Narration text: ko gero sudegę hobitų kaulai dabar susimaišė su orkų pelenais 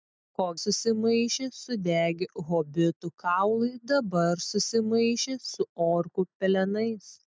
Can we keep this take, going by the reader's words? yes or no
no